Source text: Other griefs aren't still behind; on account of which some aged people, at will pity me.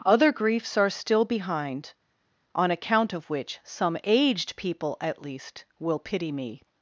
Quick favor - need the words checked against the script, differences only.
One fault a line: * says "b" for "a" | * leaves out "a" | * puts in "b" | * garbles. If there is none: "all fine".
* says "are" for "aren't"
* puts in "least"